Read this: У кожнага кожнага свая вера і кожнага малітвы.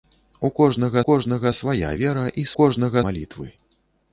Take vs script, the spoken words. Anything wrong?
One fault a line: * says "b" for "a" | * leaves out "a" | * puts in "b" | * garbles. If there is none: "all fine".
all fine